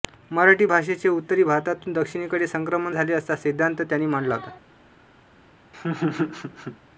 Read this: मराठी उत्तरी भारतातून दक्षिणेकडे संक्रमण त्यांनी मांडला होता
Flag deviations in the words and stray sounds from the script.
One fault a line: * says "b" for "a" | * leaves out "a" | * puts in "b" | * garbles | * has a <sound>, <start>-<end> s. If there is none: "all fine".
* puts in "भाषेचे"
* puts in "झाले असा सिद्धान्त"
* has a laugh, 5.7-6.8 s